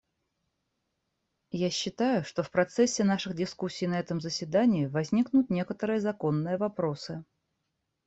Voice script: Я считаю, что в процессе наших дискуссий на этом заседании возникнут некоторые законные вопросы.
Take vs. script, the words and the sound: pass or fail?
pass